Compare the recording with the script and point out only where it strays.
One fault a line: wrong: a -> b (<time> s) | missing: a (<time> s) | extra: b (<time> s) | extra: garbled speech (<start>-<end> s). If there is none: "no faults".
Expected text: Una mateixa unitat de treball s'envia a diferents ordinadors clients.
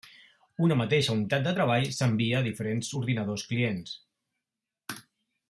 no faults